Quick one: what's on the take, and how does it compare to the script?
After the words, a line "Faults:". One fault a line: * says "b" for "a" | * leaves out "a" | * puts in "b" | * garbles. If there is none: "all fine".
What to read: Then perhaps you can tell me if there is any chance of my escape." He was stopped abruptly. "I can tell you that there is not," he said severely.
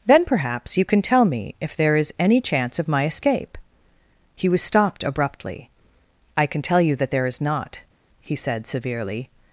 Then perhaps you can tell me if there is any chance of my escape." He was stopped abruptly. "I can tell you that there is not," he said severely.
Faults:
all fine